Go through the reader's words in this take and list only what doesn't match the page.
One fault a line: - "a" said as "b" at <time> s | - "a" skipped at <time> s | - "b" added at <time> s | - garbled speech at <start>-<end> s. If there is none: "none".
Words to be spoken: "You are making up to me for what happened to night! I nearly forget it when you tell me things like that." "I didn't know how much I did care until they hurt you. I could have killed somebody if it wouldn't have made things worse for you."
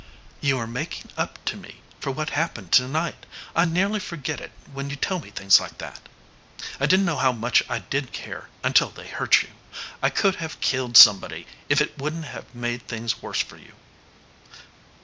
none